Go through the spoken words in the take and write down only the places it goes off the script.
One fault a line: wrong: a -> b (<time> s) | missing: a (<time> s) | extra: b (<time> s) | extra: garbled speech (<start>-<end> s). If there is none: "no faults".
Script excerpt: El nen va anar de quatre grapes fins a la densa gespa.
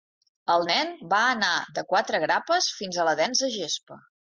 no faults